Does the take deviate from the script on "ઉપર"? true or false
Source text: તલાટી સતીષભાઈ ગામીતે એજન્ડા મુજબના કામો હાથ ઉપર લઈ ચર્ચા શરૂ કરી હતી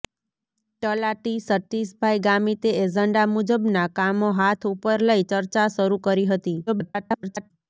false